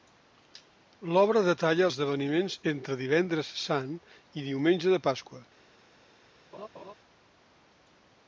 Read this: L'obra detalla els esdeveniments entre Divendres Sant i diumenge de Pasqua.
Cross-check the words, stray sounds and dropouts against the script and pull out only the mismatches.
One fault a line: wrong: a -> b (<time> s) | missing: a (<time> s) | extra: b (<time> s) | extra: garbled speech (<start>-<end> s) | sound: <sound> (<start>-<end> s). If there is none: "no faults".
missing: els (1.9 s)
sound: laugh (6.5-6.9 s)